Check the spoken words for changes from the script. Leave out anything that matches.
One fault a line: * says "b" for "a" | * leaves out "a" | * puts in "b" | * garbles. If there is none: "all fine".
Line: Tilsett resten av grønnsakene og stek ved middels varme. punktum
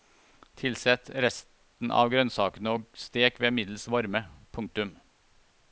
all fine